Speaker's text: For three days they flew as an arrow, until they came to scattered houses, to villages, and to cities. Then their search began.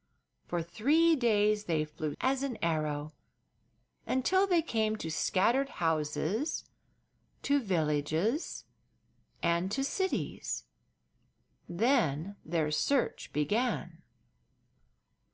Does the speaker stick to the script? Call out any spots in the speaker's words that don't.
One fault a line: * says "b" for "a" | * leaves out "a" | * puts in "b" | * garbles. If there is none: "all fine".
all fine